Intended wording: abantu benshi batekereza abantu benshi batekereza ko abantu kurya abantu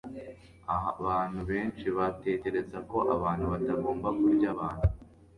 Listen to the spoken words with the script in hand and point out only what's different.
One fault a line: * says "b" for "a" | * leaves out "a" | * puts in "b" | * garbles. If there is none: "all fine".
* leaves out "abantu benshi batekereza"
* puts in "batagomba"